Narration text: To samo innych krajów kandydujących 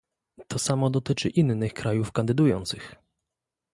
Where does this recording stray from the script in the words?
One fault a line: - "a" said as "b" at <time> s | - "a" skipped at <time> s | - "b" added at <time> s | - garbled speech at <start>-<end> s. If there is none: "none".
- "dotyczy" added at 0.9 s